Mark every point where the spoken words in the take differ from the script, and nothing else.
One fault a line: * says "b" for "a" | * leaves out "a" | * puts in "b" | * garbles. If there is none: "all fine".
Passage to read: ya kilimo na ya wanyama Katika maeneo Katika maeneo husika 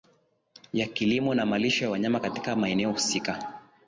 * puts in "malisho"
* leaves out "Katika maeneo"